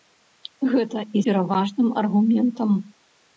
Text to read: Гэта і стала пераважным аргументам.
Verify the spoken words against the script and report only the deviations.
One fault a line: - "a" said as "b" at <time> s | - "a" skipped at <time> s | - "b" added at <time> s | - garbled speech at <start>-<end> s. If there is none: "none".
- "стала" skipped at 1.2 s